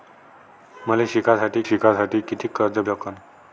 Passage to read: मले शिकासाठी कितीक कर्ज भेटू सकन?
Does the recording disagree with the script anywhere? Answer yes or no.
yes